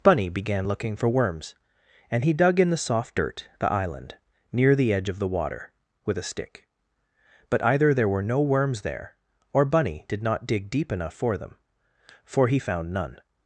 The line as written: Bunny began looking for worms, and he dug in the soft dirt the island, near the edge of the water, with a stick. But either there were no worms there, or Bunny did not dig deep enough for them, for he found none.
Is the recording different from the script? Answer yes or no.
no